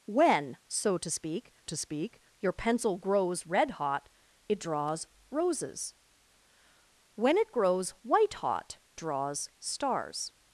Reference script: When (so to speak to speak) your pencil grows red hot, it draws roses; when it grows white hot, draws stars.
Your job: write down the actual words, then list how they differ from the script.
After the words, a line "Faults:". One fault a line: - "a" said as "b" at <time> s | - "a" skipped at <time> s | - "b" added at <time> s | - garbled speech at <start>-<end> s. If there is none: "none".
When (so to speak to speak) your pencil grows red hot, it draws roses; when it grows white hot, draws stars.
Faults:
none